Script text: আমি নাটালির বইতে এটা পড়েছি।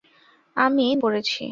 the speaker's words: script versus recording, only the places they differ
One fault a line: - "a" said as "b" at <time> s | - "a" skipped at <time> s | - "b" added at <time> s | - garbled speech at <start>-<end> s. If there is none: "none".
- "নাটালির বইতে এটা" skipped at 0.8 s